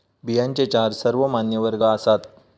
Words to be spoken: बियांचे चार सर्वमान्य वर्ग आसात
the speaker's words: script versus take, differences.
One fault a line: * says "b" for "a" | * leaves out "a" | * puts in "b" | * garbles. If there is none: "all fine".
all fine